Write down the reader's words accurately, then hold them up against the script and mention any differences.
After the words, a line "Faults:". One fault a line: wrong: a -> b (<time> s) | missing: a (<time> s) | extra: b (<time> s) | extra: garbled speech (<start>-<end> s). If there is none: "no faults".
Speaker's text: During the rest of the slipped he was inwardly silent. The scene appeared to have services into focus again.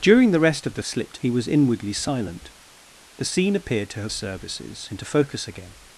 During the rest of the slipped he was inwardly silent. The scene appeared to have services into focus again.
Faults:
no faults